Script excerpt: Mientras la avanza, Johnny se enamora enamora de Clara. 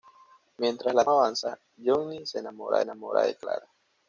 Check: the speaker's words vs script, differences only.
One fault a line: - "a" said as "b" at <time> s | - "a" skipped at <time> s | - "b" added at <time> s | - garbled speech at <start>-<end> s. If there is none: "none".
none